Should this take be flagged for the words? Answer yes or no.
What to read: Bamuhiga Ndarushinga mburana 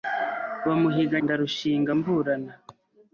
no